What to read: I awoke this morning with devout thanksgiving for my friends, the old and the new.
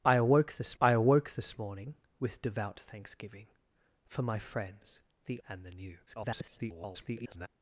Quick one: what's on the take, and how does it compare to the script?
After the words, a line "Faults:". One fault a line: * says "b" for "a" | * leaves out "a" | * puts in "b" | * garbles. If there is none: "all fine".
I awoke this I awoke this morning with devout thanksgiving for my friends, the and the new. [garbled]
Faults:
* puts in "I awoke this"
* leaves out "old"
* garbles